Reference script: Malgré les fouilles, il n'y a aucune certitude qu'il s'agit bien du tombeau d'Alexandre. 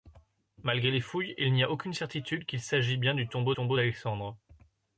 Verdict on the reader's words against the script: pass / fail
fail